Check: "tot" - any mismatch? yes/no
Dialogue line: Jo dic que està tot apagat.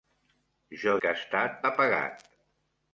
yes